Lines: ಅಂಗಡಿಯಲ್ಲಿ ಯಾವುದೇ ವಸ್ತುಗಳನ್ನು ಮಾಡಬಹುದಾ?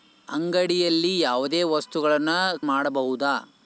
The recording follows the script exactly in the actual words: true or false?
true